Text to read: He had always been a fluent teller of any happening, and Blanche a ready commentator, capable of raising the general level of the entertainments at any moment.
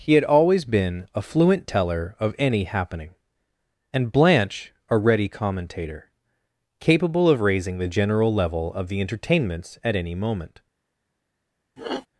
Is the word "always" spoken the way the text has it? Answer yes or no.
yes